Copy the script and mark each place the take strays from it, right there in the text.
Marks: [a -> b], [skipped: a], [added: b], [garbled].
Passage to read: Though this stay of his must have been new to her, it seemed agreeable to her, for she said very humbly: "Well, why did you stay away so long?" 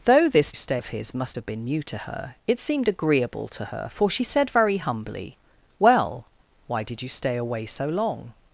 Though this stay of his must have been new to her, it seemed agreeable to her, for she said very humbly: "Well, why did you stay away so long?"